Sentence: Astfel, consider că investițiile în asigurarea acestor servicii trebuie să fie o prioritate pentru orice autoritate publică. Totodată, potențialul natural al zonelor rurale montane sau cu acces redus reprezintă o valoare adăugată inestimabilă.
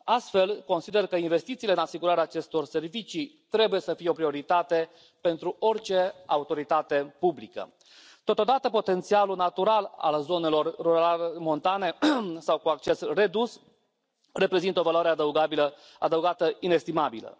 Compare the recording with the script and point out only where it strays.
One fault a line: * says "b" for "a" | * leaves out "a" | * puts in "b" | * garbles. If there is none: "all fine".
all fine